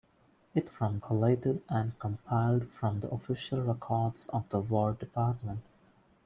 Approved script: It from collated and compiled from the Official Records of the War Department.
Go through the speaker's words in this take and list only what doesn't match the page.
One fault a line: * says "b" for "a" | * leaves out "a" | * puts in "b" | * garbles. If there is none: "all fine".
all fine